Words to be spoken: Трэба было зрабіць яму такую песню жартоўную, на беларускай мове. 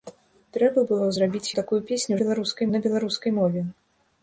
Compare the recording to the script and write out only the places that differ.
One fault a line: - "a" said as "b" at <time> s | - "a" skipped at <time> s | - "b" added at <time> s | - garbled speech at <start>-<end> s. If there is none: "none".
- "яму" skipped at 1.5 s
- "жартоўную" said as "беларускай" at 2.2 s